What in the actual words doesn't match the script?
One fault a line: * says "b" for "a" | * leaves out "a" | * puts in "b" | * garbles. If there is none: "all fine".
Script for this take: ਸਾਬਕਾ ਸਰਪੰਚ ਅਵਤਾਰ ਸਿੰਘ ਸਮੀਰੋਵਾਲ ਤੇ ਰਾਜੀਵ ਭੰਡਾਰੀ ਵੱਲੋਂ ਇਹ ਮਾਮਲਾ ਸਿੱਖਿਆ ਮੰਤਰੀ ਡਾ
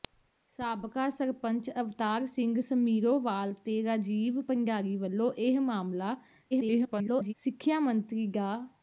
* garbles